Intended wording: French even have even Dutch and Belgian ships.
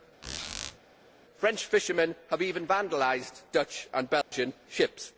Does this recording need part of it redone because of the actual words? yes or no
yes